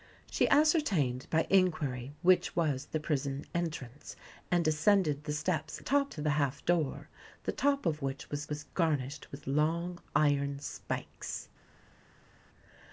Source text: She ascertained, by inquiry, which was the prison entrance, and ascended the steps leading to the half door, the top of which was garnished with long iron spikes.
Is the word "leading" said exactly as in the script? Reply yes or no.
no